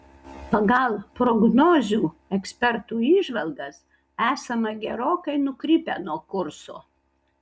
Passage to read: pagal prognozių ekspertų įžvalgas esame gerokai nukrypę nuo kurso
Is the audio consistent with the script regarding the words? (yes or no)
yes